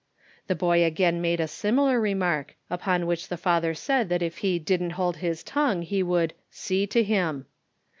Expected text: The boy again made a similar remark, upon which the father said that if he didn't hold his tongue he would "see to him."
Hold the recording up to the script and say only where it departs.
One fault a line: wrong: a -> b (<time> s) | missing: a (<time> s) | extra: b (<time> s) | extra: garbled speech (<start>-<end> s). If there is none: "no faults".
no faults